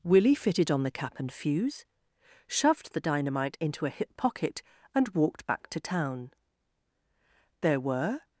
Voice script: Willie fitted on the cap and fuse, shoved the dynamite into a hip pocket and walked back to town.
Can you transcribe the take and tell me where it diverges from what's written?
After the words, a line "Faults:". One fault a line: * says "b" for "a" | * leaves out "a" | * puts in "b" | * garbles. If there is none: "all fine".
Willie fitted on the cap and fuse, shoved the dynamite into a hip pocket and walked back to town. There were
Faults:
* puts in "There were"